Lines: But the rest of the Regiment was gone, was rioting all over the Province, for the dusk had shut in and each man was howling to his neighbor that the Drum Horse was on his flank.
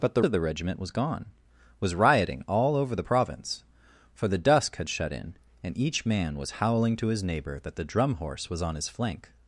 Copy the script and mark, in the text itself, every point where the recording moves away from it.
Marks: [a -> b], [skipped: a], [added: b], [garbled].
But the [skipped: rest] of the Regiment was gone, was rioting all over the Province, for the dusk had shut in and each man was howling to his neighbor that the Drum Horse was on his flank.